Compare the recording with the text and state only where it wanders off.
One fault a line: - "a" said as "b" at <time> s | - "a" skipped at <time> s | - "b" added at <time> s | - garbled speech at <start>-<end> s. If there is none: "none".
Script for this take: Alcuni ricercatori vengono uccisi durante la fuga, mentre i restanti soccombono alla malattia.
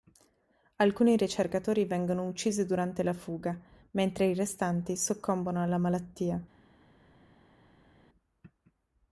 none